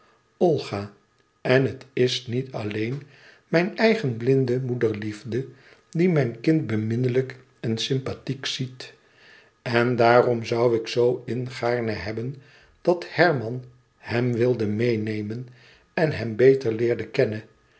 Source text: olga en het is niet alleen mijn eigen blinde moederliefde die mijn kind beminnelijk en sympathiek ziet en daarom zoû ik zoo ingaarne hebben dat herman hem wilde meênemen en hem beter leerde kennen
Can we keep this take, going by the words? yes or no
yes